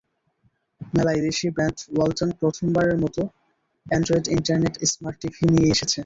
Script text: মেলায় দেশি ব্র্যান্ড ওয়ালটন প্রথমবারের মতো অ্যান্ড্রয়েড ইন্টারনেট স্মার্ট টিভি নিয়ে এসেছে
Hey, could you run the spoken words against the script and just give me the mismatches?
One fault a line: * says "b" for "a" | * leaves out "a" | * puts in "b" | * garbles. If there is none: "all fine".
all fine